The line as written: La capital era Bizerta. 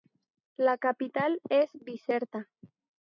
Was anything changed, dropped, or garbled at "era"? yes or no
yes